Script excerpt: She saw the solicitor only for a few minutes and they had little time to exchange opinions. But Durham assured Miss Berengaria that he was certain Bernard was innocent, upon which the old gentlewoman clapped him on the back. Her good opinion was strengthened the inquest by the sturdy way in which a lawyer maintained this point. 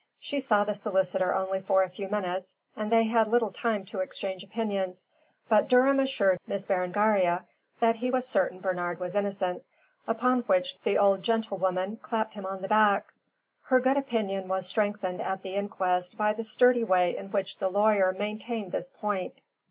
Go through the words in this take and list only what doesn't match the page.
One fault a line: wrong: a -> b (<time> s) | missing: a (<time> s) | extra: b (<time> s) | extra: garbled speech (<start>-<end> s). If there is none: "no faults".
extra: at (15.2 s)
wrong: a -> the (17.6 s)